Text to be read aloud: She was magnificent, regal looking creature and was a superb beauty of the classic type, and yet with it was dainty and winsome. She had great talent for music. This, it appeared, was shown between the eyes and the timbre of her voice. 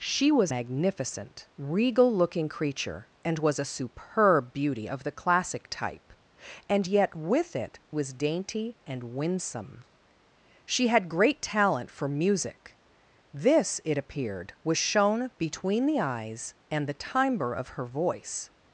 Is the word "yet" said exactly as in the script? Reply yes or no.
yes